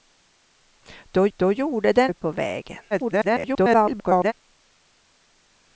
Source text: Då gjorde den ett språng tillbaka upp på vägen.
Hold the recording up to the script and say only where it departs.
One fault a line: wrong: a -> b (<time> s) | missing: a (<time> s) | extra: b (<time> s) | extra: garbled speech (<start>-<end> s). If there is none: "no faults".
extra: då (1.4 s)
missing: ett språng tillbaka (2.1 s)
extra: garbled speech (2.9-4.3 s)